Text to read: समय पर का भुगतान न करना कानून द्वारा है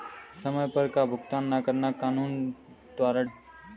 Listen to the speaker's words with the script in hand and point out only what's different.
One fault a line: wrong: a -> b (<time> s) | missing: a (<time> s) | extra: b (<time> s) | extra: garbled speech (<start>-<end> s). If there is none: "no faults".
no faults